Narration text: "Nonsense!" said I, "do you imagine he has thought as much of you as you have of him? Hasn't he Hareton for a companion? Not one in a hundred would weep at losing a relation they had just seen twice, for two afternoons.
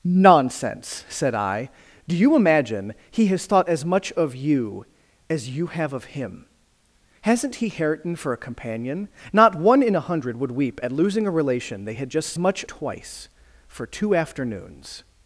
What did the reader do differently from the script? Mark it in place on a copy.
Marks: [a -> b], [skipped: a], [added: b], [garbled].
"Nonsense!" said I, "do you imagine he has thought as much of you as you have of him? Hasn't he Hareton for a companion? Not one in a hundred would weep at losing a relation they had just [seen -> much] twice, for two afternoons.